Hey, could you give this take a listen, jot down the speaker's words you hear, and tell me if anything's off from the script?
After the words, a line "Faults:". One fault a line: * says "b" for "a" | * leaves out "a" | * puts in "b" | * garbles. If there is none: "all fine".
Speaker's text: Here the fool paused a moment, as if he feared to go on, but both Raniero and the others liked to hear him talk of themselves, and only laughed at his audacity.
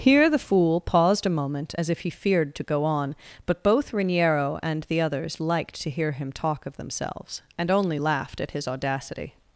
Here the fool paused a moment, as if he feared to go on, but both Raniero and the others liked to hear him talk of themselves, and only laughed at his audacity.
Faults:
all fine